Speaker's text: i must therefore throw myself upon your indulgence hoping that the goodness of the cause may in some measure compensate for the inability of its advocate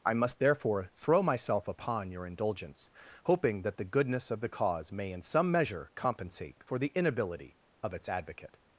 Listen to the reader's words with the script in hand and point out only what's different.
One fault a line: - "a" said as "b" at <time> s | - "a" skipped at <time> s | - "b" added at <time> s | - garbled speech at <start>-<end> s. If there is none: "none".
none